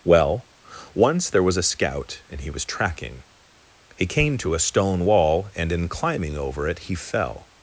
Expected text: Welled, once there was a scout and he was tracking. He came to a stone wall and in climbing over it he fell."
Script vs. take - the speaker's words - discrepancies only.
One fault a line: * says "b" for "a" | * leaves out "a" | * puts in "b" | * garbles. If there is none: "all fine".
* says "Well" for "Welled"